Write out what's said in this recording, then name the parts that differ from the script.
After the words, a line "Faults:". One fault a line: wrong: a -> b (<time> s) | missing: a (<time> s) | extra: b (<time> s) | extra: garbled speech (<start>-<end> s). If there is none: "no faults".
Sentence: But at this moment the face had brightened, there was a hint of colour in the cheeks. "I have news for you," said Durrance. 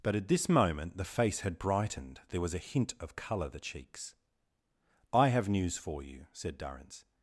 But at this moment the face had brightened, there was a hint of colour the cheeks. "I have news for you," said Durrance.
Faults:
missing: in (3.5 s)